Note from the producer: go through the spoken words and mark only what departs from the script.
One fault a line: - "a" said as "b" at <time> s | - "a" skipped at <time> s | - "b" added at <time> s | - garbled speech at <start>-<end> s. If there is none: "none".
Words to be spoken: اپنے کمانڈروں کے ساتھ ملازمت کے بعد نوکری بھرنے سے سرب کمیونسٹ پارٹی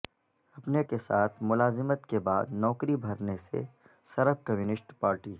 - "کمانڈروں" skipped at 0.8 s